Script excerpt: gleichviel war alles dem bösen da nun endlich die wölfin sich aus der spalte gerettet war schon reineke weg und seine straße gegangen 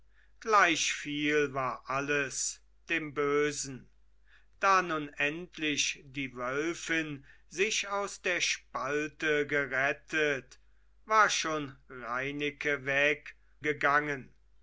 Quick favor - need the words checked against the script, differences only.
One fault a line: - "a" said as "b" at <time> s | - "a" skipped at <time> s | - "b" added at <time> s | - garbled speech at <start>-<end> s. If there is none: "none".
- "und seine straße" skipped at 13.3 s